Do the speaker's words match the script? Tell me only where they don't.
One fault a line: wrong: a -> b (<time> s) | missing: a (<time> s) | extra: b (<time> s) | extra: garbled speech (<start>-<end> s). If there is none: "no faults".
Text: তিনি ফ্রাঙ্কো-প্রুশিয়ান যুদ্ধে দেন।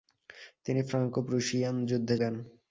no faults